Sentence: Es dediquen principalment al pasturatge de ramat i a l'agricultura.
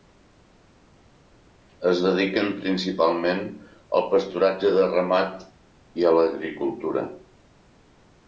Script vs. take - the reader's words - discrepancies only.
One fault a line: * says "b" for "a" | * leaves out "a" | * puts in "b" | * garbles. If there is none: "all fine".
all fine